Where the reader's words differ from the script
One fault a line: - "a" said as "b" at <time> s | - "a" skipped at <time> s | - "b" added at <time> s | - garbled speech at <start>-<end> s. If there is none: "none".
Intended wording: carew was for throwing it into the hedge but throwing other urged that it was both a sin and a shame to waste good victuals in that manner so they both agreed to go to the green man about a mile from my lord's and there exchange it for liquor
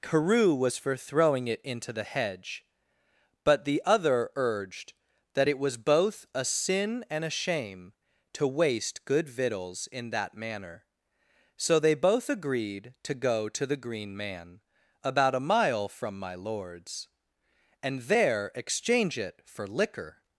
- "throwing" said as "the" at 3.6 s